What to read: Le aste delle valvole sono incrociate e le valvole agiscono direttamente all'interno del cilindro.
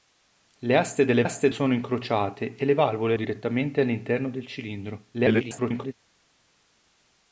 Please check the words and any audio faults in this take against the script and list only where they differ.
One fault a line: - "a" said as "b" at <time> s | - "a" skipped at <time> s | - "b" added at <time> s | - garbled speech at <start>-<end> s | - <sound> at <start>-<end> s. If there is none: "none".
- "valvole" said as "aste" at 1.2 s
- "agiscono" skipped at 3.1 s
- garbled speech at 5.1-5.9 s